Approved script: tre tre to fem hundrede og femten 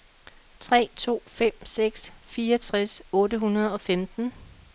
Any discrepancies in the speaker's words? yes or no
yes